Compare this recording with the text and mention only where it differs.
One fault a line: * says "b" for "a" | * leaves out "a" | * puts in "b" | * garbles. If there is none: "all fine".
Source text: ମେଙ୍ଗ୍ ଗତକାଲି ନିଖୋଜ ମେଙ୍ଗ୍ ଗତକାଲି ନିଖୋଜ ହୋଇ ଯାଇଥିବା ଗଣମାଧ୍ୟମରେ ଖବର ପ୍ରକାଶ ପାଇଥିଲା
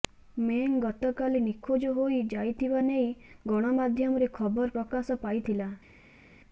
* leaves out "ମେଙ୍ଗ୍ ଗତକାଲି ନିଖୋଜ"
* puts in "ନେଇ"